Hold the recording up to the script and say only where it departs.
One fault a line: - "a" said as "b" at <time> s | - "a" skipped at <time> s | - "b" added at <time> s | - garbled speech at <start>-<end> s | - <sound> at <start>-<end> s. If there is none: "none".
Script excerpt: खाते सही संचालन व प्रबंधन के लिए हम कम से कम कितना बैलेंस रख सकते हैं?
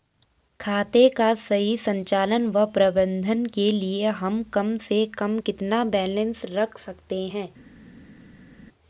- "का" added at 1.1 s